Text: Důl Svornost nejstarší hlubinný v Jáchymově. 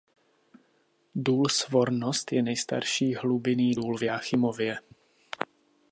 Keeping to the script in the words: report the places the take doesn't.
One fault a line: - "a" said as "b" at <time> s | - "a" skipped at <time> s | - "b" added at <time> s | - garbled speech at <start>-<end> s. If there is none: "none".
- "je" added at 2.3 s
- "důl" added at 3.7 s